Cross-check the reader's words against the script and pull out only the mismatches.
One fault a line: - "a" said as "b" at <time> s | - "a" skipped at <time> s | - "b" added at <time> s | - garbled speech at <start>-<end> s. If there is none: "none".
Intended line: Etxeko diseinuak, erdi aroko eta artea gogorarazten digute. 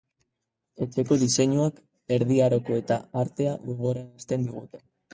none